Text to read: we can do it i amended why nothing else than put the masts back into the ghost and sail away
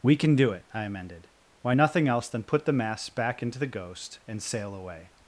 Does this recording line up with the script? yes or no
yes